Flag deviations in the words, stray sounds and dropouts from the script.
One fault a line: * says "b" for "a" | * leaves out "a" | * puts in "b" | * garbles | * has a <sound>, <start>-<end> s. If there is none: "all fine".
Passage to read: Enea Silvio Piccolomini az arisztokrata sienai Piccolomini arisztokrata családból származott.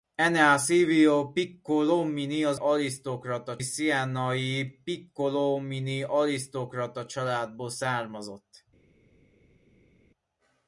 all fine